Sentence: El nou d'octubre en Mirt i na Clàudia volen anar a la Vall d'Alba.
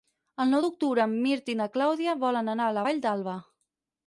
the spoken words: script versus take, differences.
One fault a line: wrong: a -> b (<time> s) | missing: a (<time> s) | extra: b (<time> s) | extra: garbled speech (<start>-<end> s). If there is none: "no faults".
no faults